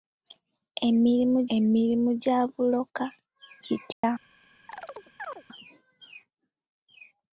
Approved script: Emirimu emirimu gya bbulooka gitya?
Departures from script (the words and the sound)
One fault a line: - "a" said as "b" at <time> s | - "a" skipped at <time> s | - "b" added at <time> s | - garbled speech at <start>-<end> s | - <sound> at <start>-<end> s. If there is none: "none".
- dropout at 3.9-4.0 s
- chirp at 4.7-5.4 s